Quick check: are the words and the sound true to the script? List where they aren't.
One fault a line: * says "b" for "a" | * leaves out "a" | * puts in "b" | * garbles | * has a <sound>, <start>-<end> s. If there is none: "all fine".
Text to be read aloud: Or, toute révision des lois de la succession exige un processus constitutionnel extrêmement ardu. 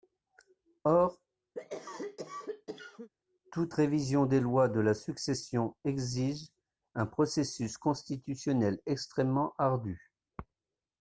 * has a cough, 1.5-3.1 s